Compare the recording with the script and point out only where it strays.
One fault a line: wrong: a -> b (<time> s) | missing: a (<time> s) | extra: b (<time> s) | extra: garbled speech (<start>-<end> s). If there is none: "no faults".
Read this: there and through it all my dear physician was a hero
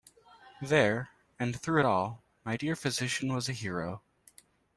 no faults